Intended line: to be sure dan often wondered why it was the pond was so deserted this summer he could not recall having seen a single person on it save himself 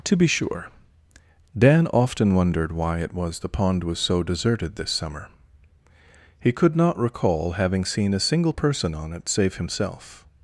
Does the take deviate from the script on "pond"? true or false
false